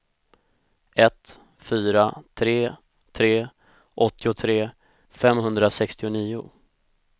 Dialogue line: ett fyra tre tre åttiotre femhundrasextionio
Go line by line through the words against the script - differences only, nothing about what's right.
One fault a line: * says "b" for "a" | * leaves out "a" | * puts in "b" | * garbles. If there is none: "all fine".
all fine